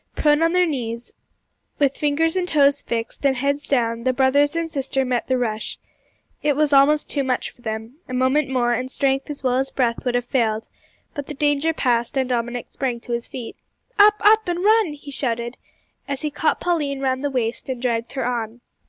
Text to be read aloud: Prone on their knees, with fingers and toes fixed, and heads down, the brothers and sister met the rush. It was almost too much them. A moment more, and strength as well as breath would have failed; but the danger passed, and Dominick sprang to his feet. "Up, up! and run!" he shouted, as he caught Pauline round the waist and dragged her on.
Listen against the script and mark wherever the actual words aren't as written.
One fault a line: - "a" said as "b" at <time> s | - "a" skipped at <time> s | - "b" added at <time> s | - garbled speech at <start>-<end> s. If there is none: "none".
- "for" added at 7.5 s